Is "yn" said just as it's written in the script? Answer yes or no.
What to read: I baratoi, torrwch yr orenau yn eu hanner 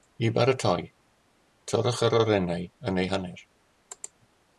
yes